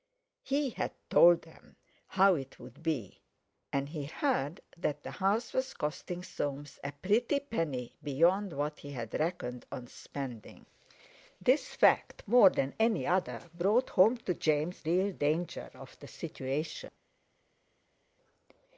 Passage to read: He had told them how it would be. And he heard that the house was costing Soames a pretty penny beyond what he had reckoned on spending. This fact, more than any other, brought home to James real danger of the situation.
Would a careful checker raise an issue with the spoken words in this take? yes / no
no